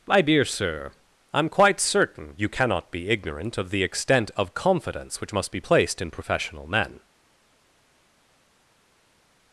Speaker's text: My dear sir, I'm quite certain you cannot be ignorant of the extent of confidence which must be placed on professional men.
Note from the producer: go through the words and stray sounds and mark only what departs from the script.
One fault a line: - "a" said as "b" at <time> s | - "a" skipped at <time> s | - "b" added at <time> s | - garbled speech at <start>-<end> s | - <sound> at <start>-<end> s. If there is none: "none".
- "on" said as "in" at 6.0 s